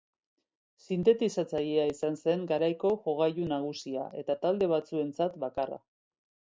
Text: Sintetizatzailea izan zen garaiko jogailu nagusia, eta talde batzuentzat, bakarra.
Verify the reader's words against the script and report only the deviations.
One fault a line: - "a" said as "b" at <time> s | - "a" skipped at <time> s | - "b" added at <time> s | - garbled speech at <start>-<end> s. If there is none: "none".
none